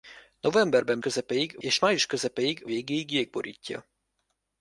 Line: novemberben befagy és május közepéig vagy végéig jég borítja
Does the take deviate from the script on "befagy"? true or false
true